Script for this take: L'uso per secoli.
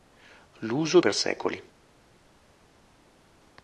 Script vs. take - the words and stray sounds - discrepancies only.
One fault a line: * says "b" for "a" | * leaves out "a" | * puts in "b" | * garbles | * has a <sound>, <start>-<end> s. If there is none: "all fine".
all fine